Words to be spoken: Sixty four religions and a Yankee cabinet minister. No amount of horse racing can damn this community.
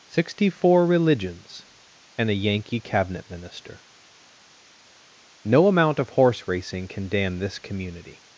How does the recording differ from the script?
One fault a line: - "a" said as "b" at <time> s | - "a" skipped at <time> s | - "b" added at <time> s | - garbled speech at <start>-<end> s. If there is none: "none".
none